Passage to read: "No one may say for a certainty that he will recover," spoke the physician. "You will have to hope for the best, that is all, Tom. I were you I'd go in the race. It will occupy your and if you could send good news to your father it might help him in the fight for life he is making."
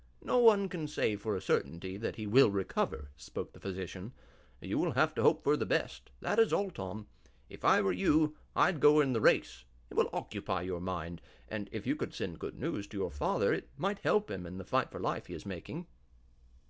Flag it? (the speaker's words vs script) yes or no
yes